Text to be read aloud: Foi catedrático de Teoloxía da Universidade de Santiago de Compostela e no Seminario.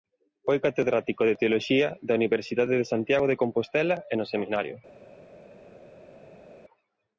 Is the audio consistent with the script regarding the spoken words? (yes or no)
yes